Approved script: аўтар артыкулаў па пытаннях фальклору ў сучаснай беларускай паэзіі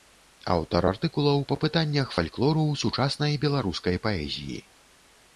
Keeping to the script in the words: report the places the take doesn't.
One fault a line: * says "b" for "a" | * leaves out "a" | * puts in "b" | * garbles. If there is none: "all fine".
all fine